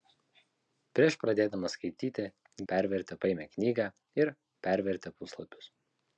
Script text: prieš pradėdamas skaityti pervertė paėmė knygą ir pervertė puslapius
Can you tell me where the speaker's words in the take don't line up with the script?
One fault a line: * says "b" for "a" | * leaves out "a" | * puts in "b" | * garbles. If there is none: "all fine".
all fine